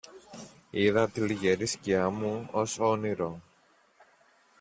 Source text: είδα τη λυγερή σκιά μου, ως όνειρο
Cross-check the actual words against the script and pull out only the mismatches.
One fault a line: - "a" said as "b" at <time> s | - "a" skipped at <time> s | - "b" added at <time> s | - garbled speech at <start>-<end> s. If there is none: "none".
none